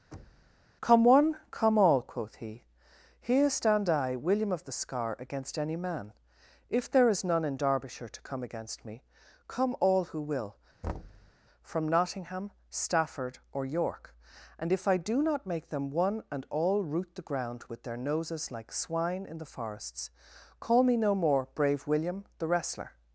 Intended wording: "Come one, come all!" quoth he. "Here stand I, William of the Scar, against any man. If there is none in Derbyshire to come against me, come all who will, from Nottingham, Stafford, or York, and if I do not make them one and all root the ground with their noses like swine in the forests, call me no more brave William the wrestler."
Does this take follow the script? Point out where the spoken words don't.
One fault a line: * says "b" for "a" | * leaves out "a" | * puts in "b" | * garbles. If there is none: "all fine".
all fine